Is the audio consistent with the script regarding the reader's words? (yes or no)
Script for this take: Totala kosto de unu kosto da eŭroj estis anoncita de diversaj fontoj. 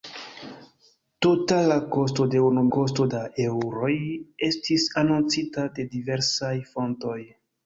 yes